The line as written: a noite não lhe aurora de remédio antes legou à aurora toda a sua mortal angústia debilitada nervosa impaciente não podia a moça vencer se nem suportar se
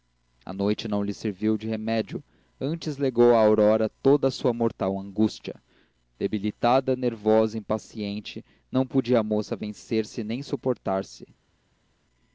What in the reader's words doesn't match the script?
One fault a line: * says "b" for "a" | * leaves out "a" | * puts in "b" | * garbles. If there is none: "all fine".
* says "serviu" for "aurora"